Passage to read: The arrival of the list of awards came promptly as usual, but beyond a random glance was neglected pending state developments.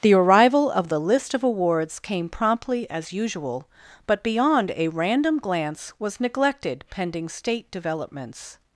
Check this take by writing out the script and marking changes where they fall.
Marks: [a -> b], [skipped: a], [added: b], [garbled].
The arrival of the list of awards came promptly as usual, but beyond a random glance was neglected pending state developments.